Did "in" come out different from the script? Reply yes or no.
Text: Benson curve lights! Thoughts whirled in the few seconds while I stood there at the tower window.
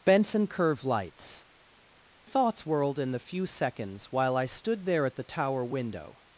no